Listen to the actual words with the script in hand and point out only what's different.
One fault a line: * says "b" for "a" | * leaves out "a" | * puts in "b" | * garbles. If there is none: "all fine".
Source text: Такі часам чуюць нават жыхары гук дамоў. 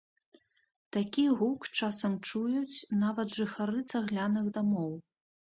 * puts in "гук"
* says "цагляных" for "гук"